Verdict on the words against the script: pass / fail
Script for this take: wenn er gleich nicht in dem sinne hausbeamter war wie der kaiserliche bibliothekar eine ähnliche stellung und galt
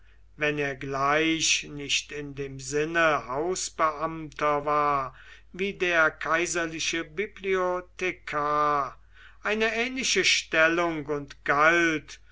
pass